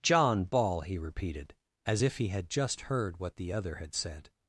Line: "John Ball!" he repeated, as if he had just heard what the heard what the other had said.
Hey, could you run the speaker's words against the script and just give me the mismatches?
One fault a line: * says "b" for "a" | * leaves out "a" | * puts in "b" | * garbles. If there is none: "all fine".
* leaves out "heard what the"